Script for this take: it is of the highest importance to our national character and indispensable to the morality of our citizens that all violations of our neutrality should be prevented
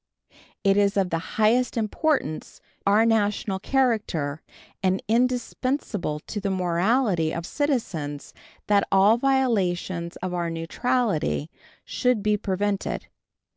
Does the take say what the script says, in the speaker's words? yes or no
no